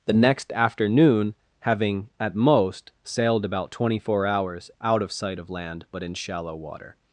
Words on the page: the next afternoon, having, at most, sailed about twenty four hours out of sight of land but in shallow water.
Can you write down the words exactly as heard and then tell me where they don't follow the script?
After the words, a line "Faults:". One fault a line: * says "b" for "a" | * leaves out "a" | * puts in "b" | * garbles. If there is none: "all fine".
the next afternoon, having, at most, sailed about twenty four hours out of sight of land but in shallow water.
Faults:
all fine